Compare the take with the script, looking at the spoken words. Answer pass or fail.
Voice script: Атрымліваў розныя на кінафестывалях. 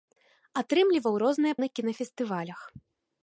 pass